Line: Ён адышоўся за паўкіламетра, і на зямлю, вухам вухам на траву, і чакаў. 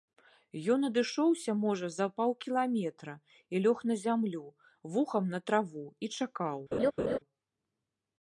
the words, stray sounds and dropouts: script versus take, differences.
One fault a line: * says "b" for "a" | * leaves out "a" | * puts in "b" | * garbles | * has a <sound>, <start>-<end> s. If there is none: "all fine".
* puts in "можа"
* puts in "лёг"
* leaves out "вухам"
* has a laugh, 6.7-7.2 s